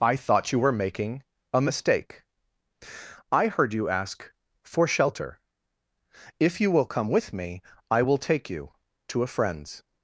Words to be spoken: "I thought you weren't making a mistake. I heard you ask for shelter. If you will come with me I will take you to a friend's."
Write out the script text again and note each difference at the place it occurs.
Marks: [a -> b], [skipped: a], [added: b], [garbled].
"I thought you [weren't -> were] making a mistake. I heard you ask for shelter. If you will come with me I will take you to a friend's."